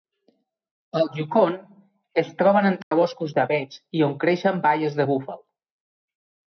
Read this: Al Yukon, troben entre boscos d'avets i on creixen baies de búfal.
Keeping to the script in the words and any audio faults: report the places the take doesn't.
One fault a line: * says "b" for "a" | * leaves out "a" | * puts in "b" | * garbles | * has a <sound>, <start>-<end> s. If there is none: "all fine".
* puts in "es"
* has a dropout, 2.8-2.9 s